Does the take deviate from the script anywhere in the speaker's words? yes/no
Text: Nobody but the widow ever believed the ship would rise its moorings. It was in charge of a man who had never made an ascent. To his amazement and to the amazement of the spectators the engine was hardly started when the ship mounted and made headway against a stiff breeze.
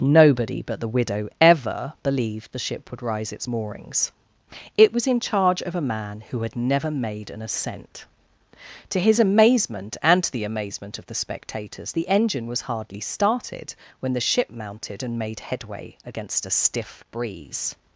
no